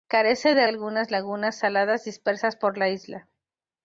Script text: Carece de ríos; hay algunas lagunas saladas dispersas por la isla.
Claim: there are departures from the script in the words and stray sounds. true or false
true